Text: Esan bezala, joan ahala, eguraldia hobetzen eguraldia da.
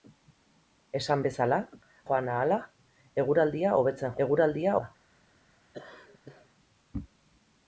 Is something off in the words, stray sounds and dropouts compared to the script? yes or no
yes